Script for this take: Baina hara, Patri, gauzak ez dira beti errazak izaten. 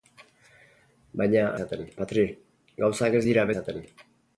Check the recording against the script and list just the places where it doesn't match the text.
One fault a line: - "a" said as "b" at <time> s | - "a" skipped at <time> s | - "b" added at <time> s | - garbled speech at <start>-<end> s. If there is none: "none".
- "hara" said as "izaten" at 1.5 s
- "beti errazak" skipped at 3.5 s